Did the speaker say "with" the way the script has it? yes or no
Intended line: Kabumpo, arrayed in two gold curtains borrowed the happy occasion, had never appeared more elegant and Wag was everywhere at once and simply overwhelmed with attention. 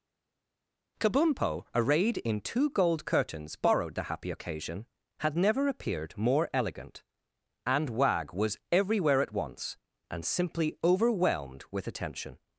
yes